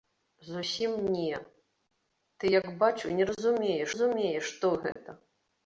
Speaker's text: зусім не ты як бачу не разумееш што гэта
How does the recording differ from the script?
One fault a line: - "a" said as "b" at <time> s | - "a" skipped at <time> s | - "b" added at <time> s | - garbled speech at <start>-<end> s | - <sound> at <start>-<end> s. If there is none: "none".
- "разумееш" added at 3.9 s
- dropout at 4.9-5.0 s